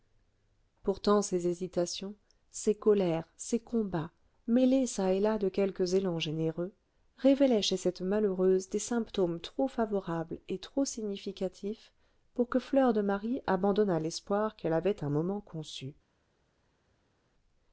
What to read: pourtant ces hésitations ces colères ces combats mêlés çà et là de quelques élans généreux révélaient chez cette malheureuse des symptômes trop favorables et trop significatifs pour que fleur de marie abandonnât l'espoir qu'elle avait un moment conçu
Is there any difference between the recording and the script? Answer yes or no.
no